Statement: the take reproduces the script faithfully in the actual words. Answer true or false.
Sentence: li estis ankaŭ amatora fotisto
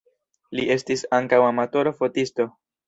true